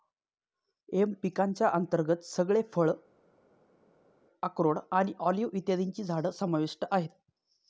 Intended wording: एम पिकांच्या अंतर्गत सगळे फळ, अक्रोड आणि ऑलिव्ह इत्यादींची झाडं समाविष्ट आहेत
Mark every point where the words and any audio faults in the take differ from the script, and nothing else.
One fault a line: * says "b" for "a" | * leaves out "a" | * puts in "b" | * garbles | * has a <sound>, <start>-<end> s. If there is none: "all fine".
all fine